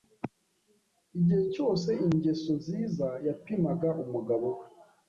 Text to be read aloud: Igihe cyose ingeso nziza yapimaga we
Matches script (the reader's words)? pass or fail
fail